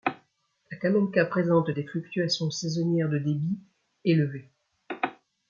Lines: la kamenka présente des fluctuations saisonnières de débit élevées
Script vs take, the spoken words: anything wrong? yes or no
no